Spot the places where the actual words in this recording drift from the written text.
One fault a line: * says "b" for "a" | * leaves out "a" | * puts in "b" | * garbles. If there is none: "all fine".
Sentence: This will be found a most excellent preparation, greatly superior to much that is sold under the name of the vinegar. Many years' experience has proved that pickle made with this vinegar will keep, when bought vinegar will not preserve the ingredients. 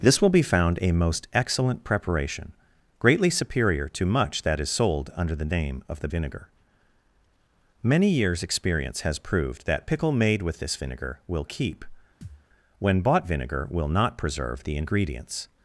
all fine